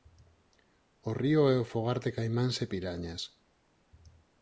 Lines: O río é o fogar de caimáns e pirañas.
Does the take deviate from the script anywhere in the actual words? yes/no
no